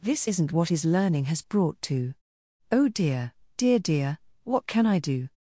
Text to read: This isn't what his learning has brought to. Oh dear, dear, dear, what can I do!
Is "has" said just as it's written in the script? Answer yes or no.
yes